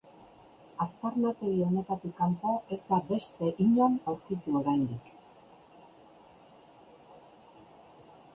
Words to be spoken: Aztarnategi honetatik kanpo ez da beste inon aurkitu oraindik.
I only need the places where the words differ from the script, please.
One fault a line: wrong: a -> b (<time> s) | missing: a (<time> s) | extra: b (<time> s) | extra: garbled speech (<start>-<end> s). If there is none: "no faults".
no faults